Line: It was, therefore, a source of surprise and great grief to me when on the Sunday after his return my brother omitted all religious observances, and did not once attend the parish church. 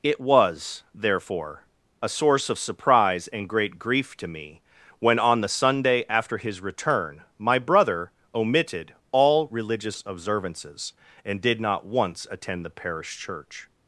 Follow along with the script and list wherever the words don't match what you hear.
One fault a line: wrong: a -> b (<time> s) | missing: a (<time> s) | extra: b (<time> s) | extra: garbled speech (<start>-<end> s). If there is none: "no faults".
no faults